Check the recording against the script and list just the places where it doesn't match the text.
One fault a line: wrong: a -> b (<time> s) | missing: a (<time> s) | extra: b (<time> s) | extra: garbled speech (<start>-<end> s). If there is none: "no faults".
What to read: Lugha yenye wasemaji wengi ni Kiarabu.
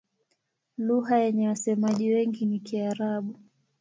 no faults